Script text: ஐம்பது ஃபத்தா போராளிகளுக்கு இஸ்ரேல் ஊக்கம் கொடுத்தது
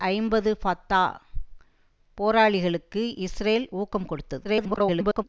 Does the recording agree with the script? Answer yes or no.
no